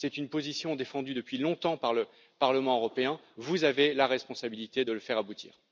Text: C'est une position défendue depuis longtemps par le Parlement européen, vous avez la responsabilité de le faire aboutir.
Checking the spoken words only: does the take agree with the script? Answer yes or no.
yes